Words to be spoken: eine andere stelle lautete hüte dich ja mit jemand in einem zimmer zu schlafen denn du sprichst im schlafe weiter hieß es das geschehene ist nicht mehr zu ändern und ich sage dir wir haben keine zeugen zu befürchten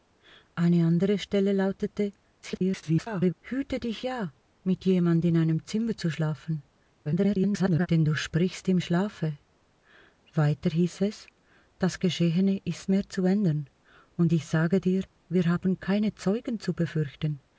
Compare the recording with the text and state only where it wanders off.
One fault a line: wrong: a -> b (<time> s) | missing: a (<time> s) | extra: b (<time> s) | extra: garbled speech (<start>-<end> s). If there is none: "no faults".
extra: garbled speech (2.4-3.3 s)
extra: garbled speech (7.0-7.9 s)
missing: nicht (12.9 s)